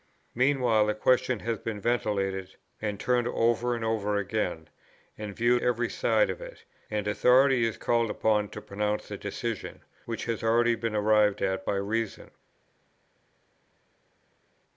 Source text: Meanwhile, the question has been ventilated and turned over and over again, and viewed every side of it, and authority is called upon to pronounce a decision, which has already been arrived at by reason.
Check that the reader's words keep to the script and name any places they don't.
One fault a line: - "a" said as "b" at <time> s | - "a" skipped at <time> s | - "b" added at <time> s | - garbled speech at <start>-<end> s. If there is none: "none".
none